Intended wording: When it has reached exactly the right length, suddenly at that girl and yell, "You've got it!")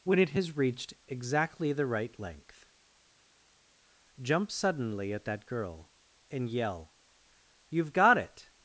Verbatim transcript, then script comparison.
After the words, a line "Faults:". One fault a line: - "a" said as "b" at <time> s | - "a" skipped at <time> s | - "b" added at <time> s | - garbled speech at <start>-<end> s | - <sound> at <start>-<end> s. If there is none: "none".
When it has reached exactly the right length, jump suddenly at that girl and yell, "You've got it!")
Faults:
- "jump" added at 4.2 s